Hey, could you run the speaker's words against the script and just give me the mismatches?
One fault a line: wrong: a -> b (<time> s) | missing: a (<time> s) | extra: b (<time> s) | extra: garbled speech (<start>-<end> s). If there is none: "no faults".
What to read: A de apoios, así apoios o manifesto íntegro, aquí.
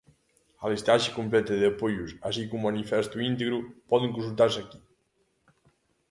extra: listaxe completa (0.7 s)
wrong: apoios -> como (2.5 s)
extra: poden consultarse (3.9 s)